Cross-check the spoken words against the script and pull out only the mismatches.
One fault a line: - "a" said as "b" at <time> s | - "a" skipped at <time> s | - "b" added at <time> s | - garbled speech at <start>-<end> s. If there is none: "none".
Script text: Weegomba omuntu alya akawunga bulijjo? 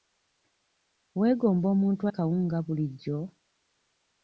- "alya" skipped at 2.0 s